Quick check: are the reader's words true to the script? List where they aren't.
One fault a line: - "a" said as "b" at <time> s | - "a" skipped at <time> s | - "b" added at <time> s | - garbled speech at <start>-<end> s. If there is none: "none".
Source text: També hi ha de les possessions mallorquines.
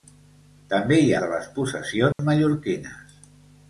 none